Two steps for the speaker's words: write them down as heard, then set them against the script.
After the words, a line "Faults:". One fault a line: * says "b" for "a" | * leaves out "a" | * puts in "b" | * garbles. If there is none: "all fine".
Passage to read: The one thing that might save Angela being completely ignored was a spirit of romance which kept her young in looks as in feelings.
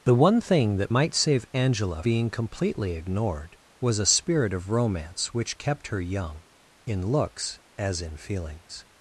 The one thing that might save Angela being completely ignored was a spirit of romance which kept her young in looks as in feelings.
Faults:
all fine